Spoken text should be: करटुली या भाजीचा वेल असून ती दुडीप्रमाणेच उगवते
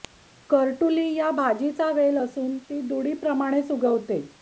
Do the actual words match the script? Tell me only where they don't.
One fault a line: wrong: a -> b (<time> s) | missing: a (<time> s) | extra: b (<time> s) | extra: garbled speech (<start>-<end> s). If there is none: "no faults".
no faults